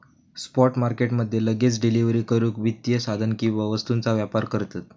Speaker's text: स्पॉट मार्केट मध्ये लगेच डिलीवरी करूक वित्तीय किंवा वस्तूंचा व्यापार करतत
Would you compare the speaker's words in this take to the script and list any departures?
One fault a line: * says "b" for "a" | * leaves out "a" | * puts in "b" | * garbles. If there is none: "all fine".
* puts in "साधन"